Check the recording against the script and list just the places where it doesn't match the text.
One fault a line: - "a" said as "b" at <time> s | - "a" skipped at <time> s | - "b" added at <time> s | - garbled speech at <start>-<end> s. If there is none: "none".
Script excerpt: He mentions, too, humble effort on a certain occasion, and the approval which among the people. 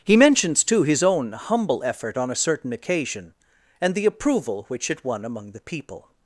- "his own" added at 0.8 s
- "it won" added at 4.9 s